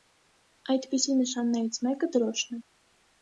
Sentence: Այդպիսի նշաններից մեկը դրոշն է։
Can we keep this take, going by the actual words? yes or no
yes